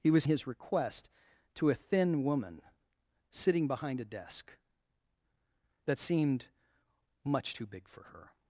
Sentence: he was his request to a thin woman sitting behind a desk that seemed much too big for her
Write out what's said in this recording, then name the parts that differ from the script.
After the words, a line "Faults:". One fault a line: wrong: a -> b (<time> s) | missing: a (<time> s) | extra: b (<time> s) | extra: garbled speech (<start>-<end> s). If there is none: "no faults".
he was his request to a thin woman sitting behind a desk that seemed much too big for her
Faults:
no faults